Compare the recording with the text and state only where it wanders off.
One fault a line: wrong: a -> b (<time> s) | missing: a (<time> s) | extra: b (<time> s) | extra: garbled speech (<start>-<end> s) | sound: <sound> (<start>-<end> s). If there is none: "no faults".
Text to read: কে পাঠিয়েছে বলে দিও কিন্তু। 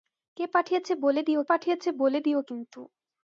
extra: পাঠিয়েছে বলে দিও (1.5 s)